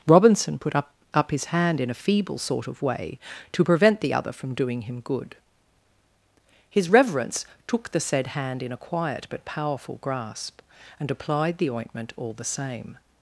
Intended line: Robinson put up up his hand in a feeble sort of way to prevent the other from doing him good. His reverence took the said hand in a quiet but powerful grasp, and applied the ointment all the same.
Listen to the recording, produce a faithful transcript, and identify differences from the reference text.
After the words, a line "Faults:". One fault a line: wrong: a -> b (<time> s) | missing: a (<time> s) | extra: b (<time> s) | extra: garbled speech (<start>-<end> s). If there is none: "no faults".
Robinson put up up his hand in a feeble sort of way to prevent the other from doing him good. His reverence took the said hand in a quiet but powerful grasp, and applied the ointment all the same.
Faults:
no faults